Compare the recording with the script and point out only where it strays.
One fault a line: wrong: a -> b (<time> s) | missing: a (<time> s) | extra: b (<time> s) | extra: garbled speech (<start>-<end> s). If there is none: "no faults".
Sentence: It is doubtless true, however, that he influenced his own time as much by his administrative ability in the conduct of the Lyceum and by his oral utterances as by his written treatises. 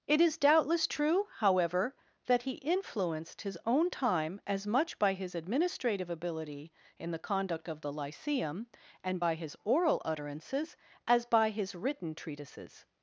no faults